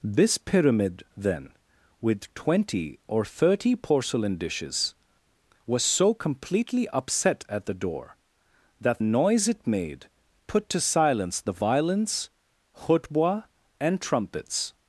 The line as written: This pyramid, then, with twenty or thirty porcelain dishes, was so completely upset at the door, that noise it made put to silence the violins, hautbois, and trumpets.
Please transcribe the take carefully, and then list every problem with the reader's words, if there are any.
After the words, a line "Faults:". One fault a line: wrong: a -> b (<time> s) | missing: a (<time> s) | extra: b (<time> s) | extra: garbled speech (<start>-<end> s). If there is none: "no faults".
This pyramid, then, with twenty or thirty porcelain dishes, was so completely upset at the door, that noise it made put to silence the violins, hautbois, and trumpets.
Faults:
no faults